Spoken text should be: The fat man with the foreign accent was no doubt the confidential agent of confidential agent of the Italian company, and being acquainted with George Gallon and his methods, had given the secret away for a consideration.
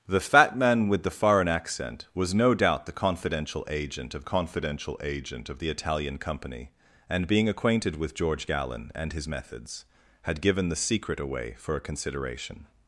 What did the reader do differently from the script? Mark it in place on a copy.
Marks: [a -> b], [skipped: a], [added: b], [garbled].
The fat man with the foreign accent was no doubt the confidential agent of confidential agent of the Italian company, and being acquainted with George Gallon and his methods, had given the secret away for a consideration.